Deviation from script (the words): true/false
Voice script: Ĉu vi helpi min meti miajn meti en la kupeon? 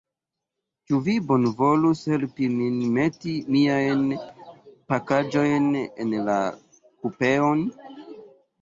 true